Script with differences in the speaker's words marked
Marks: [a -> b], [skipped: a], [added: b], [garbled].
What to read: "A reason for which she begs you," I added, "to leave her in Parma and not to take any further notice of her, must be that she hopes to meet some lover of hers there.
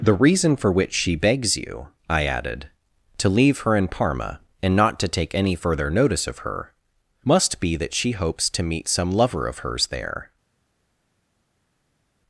["A -> The] reason for which she begs you," I added, "to leave her in Parma and not to take any further notice of her, must be that she hopes to meet some lover of hers there.